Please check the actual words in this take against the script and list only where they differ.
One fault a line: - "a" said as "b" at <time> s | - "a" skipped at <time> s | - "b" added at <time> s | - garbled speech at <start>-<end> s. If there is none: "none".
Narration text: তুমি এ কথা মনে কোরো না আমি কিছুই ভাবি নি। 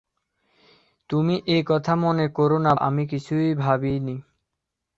none